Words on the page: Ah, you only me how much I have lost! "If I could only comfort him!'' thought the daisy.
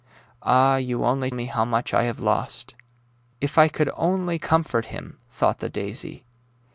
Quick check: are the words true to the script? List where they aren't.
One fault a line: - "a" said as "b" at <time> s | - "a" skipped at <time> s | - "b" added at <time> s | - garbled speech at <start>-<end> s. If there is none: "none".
none